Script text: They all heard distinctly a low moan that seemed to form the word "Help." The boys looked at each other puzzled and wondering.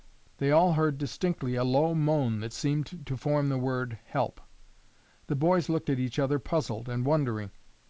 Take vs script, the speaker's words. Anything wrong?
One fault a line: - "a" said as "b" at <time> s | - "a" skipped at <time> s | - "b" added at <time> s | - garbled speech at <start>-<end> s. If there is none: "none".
none